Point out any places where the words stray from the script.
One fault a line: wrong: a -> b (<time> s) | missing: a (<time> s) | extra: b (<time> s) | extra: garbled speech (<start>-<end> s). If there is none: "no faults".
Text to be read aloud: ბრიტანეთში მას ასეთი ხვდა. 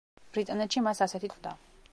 no faults